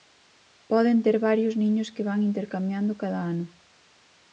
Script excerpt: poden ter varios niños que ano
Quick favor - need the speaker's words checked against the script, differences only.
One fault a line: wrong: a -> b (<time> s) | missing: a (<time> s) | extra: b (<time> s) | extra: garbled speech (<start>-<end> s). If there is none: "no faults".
extra: van intercambiando cada (2.0 s)